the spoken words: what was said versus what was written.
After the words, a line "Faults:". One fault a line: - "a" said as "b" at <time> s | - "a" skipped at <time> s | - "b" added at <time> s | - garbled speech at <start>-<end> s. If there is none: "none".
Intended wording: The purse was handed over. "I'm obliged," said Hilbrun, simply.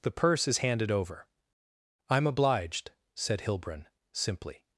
The purse is handed over. "I'm obliged," said Hilbrun, simply.
Faults:
- "was" said as "is" at 0.5 s